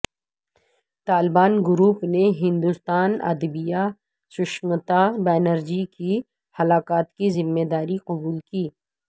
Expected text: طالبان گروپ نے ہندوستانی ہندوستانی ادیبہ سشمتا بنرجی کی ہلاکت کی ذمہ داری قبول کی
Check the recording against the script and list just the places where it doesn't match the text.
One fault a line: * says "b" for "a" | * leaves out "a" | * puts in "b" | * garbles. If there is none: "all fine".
* leaves out "ہندوستانی"